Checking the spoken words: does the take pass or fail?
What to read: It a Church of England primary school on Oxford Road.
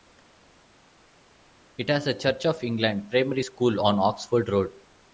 fail